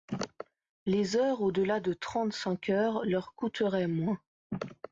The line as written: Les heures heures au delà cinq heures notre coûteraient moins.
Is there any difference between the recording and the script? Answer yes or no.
yes